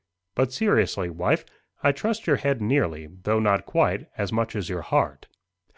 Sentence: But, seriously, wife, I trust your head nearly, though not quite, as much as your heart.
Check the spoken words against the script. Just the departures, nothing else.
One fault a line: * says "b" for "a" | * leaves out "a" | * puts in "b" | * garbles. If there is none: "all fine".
all fine